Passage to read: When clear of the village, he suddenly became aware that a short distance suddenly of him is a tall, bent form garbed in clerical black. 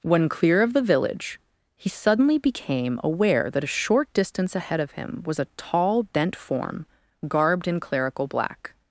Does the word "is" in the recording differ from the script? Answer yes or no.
yes